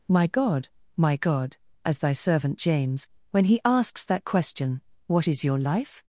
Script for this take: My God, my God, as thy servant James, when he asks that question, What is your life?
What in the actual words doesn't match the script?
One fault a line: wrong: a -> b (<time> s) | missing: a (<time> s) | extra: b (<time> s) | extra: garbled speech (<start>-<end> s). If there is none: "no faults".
no faults